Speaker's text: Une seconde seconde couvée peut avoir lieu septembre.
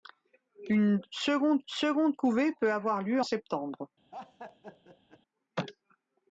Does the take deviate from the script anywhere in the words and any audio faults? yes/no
yes